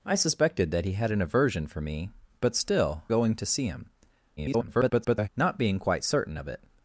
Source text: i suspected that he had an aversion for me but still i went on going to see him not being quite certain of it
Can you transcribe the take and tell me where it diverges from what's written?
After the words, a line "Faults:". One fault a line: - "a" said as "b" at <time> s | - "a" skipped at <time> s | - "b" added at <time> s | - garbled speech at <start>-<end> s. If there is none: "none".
i suspected that he had an aversion for me but still going to see him [garbled] not being quite certain of it
Faults:
- "i went on" skipped at 3.0 s
- garbled speech at 4.4-5.3 s